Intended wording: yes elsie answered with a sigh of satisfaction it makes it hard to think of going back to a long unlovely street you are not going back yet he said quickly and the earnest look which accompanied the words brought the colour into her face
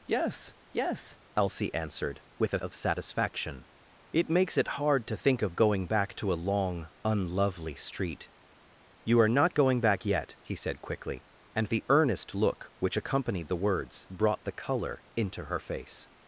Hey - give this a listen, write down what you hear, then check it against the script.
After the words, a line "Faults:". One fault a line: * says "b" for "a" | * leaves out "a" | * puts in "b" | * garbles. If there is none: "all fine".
yes yes elsie answered with a of satisfaction it makes it hard to think of going back to a long unlovely street you are not going back yet he said quickly and the earnest look which accompanied the words brought the colour into her face
Faults:
* puts in "yes"
* leaves out "sigh"